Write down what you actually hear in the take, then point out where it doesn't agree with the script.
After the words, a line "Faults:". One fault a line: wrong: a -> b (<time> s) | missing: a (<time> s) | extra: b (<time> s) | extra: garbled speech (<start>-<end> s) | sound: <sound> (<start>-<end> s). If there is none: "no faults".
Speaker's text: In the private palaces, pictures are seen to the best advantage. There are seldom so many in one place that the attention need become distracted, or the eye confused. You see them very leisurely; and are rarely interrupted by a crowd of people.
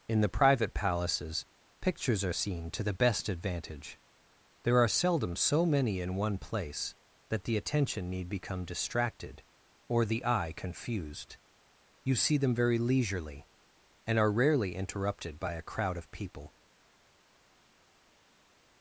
In the private palaces, pictures are seen to the best advantage. There are seldom so many in one place that the attention need become distracted, or the eye confused. You see them very leisurely; and are rarely interrupted by a crowd of people.
Faults:
no faults